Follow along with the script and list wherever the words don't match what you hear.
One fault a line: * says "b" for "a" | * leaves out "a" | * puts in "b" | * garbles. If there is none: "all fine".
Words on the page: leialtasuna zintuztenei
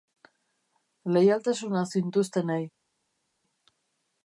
all fine